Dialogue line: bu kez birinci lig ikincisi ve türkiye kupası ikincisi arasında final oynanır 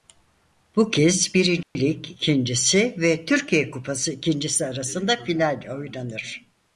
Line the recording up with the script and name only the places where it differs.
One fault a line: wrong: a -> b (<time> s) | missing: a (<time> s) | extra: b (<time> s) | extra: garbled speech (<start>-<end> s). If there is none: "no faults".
no faults